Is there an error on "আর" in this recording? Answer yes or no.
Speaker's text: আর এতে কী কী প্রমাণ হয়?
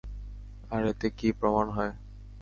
no